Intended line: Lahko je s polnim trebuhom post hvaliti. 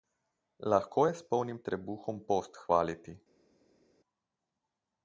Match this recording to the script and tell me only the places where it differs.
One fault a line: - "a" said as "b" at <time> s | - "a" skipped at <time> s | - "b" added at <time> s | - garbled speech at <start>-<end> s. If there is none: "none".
none